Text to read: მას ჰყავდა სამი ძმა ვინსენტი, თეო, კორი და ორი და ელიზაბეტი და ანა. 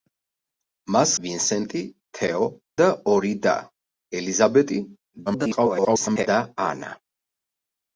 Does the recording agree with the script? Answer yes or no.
no